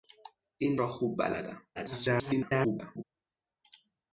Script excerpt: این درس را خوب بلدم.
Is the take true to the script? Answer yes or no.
no